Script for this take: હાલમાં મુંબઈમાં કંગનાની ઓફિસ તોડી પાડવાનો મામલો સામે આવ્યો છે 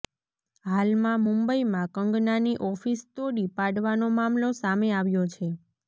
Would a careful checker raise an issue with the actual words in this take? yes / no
no